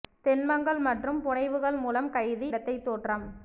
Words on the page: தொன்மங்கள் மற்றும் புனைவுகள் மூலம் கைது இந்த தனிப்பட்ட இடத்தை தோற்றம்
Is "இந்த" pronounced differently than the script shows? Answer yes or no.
yes